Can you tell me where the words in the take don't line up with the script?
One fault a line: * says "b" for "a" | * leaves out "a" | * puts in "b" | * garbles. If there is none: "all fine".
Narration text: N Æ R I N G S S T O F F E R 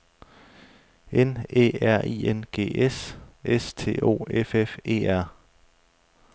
all fine